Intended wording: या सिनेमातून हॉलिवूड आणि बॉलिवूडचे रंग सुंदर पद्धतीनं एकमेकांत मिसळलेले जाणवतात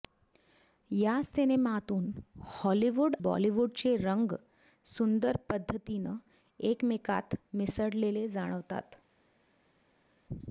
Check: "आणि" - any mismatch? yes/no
yes